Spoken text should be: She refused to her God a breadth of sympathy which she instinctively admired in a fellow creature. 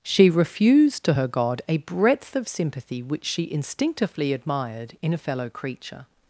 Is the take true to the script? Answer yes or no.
yes